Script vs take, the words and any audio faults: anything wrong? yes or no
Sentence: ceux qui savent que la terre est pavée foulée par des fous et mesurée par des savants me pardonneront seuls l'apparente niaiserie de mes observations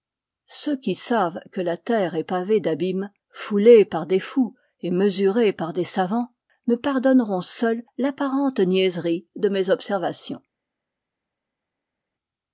yes